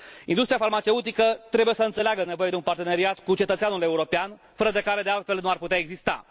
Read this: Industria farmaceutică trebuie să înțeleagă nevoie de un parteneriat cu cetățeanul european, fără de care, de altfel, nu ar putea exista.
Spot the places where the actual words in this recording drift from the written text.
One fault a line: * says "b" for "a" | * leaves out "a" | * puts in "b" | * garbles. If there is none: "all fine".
all fine